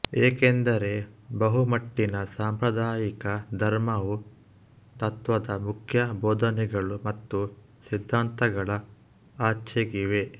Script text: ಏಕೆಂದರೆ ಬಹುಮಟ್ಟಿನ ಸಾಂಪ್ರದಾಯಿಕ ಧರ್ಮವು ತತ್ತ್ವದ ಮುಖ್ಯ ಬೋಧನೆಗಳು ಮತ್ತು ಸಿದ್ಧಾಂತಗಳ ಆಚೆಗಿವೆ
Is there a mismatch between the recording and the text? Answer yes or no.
no